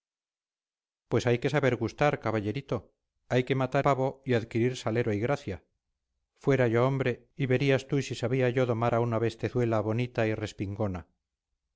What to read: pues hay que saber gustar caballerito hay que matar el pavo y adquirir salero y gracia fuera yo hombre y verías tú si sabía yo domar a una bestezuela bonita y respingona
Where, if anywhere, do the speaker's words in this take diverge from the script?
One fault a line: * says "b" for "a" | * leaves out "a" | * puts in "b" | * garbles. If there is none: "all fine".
* leaves out "el"